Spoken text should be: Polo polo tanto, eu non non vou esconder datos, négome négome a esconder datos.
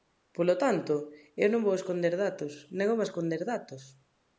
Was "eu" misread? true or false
false